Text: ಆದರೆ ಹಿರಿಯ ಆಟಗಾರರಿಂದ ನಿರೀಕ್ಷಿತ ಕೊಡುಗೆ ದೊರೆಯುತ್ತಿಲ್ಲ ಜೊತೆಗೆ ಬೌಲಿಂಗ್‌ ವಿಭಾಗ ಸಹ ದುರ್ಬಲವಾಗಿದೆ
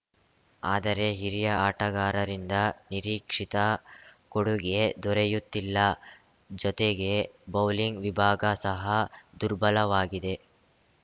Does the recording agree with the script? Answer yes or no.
yes